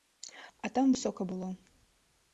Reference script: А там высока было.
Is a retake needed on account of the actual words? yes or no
no